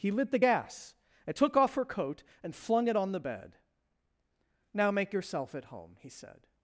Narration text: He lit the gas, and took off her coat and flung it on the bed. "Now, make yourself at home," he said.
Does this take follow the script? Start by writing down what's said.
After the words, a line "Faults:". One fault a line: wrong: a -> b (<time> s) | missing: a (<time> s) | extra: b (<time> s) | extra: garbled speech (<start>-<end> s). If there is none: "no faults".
He lit the gas, and took off her coat and flung it on the bed. "Now, make yourself at home," he said.
Faults:
no faults